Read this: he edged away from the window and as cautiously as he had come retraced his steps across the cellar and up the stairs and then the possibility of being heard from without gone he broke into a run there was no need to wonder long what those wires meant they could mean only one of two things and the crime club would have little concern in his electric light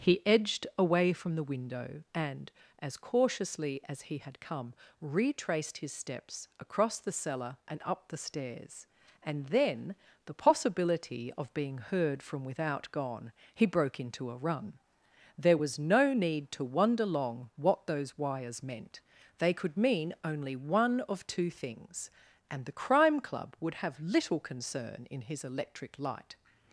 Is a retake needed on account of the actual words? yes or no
no